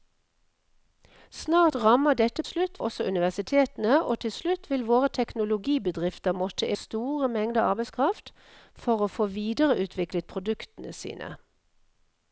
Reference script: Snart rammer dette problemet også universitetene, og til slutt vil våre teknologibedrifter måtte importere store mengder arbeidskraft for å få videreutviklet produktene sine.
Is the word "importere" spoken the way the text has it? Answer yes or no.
no